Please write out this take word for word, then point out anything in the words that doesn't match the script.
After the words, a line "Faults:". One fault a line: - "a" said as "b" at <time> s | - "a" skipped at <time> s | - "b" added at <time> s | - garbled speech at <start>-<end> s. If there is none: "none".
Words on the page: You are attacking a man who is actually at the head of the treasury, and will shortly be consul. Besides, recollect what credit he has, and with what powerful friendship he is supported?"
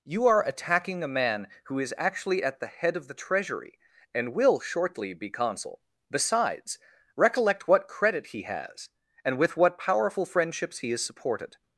You are attacking a man who is actually at the head of the treasury, and will shortly be consul. Besides, recollect what credit he has, and with what powerful friendships he is supported?"
Faults:
- "friendship" said as "friendships" at 10.2 s